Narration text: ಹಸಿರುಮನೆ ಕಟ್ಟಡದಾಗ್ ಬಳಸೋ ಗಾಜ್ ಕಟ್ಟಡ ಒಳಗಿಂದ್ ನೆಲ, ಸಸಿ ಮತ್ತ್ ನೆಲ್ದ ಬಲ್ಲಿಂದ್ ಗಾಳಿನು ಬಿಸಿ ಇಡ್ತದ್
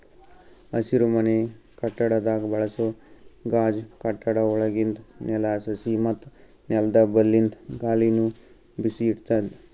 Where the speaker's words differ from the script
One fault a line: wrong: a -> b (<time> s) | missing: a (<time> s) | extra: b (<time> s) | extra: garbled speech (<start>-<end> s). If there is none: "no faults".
no faults